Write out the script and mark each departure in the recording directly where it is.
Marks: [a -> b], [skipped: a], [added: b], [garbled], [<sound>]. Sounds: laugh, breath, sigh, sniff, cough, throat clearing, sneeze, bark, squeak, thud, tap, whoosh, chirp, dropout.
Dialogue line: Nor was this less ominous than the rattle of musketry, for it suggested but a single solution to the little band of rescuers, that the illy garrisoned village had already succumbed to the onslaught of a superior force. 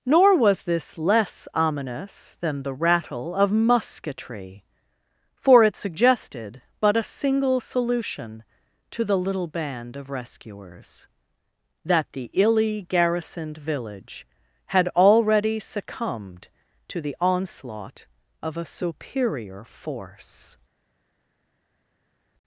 Nor was this less ominous than the rattle of musketry, for it suggested but a single solution to the little band of rescuers, that the illy garrisoned village had already succumbed to the onslaught of a superior force.